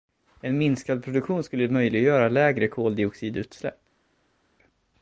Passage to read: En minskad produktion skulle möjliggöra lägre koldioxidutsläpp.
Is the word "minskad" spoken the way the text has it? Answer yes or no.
yes